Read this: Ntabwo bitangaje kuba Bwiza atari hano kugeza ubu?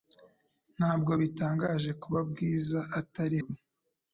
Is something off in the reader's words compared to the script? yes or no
yes